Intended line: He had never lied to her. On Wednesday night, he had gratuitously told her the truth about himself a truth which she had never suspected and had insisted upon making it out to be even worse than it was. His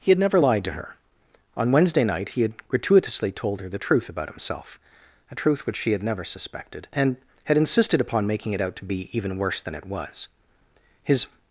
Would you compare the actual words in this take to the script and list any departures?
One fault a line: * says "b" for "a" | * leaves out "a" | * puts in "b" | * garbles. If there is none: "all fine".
all fine